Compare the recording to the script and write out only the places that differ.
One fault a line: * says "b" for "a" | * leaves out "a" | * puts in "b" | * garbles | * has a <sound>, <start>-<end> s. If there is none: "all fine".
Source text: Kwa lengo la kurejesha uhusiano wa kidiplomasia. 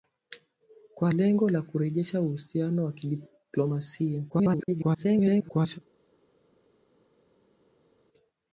* garbles